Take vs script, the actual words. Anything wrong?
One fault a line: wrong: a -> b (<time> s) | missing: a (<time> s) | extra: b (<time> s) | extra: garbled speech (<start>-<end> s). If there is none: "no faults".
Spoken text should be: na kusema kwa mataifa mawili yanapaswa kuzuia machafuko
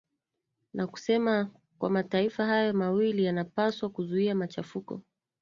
extra: hayo (2.5 s)